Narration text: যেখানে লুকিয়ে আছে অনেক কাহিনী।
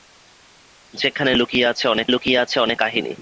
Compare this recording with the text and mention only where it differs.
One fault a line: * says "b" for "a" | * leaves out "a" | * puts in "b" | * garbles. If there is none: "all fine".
* puts in "লুকিয়ে আছে অনেক"